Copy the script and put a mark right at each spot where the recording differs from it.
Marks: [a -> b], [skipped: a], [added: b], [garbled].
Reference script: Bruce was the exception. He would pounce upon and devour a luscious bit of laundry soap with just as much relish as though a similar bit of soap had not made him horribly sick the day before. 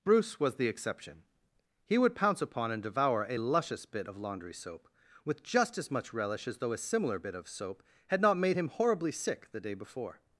Bruce was the exception. He would pounce upon and devour a luscious bit of laundry soap with just as much relish as though a similar bit of soap had not made him horribly sick the day before.